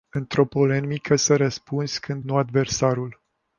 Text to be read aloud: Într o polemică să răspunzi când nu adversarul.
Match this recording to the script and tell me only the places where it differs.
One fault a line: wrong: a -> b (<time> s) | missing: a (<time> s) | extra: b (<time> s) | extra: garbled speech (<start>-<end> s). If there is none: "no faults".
no faults